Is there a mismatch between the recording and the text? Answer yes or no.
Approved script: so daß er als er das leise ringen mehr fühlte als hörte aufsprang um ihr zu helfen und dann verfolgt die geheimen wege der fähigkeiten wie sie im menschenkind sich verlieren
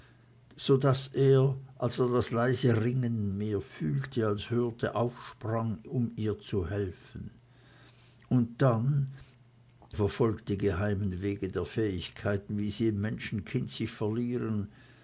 no